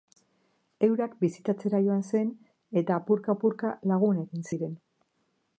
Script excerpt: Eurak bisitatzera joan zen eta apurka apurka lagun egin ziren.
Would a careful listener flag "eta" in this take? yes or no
no